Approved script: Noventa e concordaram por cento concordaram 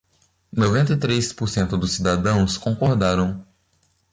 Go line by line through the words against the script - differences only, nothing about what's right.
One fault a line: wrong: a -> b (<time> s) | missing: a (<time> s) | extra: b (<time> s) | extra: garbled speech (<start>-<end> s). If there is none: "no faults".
wrong: concordaram -> três (1.0 s)
extra: dos cidadãos (1.8 s)